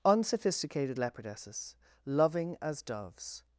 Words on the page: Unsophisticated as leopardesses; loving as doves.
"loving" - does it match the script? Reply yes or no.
yes